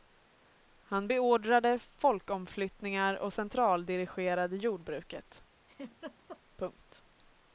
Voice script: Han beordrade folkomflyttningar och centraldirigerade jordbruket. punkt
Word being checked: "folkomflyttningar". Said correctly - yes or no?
yes